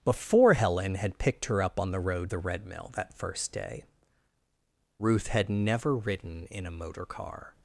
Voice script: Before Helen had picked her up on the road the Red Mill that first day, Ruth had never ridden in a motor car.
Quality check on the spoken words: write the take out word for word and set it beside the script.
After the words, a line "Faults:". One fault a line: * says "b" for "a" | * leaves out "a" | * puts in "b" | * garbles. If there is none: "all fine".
Before Helen had picked her up on the road the Red Mill that first day, Ruth had never ridden in a motor car.
Faults:
all fine